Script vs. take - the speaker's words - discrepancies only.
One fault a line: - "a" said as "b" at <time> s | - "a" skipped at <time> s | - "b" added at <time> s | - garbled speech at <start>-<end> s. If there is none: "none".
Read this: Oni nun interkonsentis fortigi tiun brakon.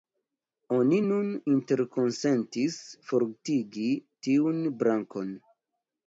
none